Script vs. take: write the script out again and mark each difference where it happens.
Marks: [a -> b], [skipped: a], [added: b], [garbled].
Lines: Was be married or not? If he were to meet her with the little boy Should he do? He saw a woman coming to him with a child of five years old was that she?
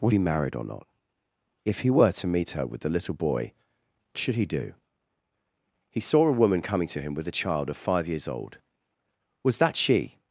Was be married or not? If he were to meet her with the little boy Should he do? He saw a woman coming to him with a child of five years old was that she?